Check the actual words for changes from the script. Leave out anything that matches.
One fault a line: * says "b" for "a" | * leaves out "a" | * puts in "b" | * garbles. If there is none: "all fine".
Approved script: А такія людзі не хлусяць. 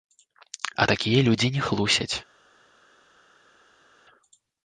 all fine